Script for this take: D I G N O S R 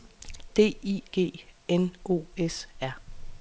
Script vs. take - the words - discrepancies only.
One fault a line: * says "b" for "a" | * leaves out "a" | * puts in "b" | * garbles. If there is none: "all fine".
all fine